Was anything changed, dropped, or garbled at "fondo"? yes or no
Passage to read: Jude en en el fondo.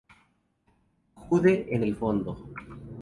no